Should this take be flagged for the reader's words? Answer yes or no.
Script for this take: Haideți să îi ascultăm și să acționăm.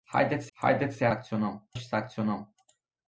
yes